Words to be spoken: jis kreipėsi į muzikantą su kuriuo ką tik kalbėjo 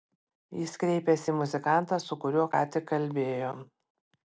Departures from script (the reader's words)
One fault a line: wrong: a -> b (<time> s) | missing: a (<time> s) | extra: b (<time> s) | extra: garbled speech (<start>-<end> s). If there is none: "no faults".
no faults